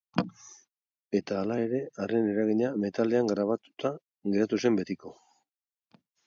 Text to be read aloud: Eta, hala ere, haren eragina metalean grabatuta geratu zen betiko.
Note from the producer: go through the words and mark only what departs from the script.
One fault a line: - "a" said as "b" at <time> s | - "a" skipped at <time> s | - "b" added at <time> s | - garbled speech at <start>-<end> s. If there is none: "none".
none